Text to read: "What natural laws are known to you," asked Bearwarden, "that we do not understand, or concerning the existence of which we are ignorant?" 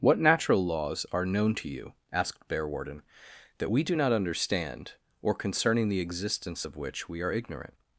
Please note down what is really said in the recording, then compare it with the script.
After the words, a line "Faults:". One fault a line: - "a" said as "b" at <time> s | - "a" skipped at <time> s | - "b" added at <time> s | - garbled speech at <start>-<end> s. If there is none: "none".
"What natural laws are known to you," asked Bearwarden, "that we do not understand, or concerning the existence of which we are ignorant?"
Faults:
none